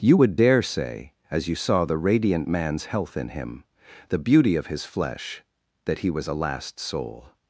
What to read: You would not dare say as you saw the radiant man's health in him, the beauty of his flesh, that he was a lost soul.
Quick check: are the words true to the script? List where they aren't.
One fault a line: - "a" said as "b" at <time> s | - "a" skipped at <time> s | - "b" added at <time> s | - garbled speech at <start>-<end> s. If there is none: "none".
- "not" skipped at 0.4 s
- "lost" said as "last" at 6.3 s